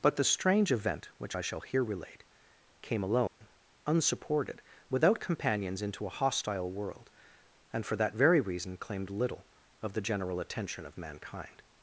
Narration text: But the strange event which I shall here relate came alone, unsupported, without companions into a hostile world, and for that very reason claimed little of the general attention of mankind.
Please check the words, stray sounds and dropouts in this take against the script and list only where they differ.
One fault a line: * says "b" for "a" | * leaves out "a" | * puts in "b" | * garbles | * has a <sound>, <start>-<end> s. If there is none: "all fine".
* has a dropout, 3.3-3.4 s